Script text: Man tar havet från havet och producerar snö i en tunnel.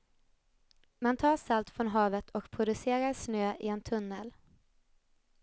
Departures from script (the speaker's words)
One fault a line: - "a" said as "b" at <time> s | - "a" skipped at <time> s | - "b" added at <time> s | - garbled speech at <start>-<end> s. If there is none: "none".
- "havet" said as "salt" at 1.4 s